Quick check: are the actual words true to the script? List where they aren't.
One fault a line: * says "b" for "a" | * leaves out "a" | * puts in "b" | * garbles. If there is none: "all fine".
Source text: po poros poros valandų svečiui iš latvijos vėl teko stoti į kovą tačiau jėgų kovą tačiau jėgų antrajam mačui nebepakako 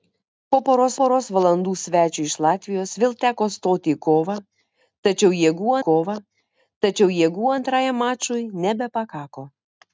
all fine